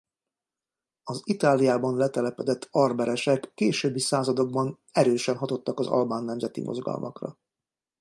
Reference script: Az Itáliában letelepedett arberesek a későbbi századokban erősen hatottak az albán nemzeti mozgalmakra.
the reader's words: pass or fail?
fail